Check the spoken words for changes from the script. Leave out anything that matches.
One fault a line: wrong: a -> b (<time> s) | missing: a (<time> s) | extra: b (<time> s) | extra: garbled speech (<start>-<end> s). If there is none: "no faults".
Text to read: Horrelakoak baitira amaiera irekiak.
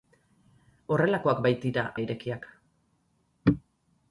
missing: amaiera (1.8 s)